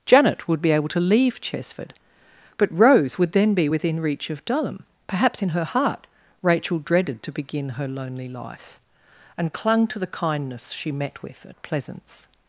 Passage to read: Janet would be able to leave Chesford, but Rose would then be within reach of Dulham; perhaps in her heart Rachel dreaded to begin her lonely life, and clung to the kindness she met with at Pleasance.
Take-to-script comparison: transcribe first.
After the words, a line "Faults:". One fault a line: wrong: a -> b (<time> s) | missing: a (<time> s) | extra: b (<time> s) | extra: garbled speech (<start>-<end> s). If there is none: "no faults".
Janet would be able to leave Chesford, but Rose would then be within reach of Dulham; perhaps in her heart Rachel dreaded to begin her lonely life, and clung to the kindness she met with at Pleasance.
Faults:
no faults